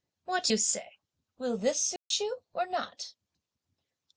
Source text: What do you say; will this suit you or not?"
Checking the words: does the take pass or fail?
pass